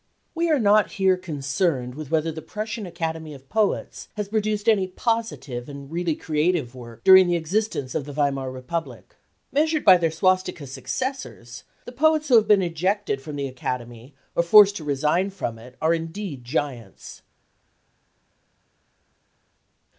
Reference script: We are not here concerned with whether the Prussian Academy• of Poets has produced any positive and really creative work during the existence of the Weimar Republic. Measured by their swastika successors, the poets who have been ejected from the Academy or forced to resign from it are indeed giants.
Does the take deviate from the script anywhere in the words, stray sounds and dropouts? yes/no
no